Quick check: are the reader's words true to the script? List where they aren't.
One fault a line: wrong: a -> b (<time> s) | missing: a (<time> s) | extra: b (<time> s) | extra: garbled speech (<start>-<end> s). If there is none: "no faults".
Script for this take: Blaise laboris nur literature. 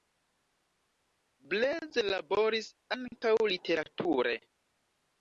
wrong: nur -> ankaŭ (3.0 s)